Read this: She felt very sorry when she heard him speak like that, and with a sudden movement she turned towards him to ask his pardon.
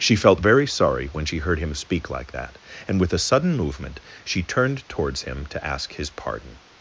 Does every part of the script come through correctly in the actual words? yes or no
yes